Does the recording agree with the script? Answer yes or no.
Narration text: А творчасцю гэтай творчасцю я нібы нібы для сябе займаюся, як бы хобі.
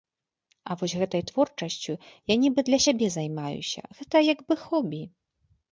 no